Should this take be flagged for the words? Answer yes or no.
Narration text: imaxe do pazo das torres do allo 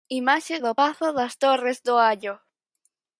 no